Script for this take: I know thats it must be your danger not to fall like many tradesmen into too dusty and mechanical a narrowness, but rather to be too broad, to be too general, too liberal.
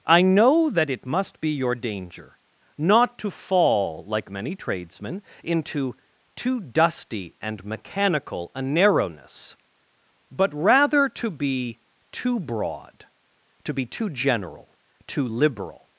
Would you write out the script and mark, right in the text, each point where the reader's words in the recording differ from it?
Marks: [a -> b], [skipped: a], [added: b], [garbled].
I know [thats -> that] it must be your danger not to fall like many tradesmen into too dusty and mechanical a narrowness, but rather to be too broad, to be too general, too liberal.